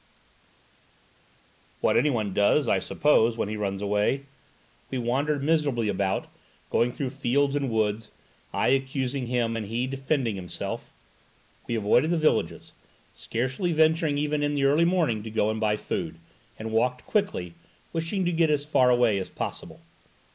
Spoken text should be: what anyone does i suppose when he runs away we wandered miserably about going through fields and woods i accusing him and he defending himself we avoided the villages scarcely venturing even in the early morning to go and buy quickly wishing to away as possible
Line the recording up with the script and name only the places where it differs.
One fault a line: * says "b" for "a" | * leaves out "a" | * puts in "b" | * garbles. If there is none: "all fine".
* puts in "food and walked"
* puts in "get as far"